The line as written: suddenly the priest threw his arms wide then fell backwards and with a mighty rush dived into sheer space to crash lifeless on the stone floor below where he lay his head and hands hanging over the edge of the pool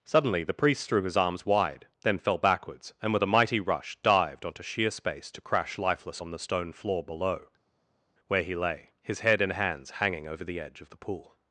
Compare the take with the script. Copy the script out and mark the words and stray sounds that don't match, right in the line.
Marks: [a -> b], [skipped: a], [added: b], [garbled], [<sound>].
suddenly the priest threw his arms wide then fell backwards and with a mighty rush dived [into -> onto] sheer space to crash lifeless on the stone floor below where he lay his head and hands hanging over the edge of the pool